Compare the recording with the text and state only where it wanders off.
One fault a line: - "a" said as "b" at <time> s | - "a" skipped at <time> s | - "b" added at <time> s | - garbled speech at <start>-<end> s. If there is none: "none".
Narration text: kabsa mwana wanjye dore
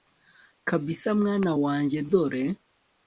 none